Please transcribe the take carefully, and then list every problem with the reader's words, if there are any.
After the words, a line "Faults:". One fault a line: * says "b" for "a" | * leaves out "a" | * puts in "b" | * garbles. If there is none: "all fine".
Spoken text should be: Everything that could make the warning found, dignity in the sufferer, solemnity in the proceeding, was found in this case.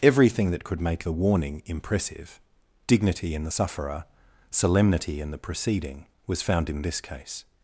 Everything that could make the warning impressive, dignity in the sufferer, solemnity in the proceeding, was found in this case.
Faults:
* says "impressive" for "found"